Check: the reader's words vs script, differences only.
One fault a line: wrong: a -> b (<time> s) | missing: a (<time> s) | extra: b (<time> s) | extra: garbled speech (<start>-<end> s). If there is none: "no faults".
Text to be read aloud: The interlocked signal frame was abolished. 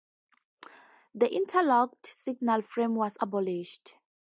no faults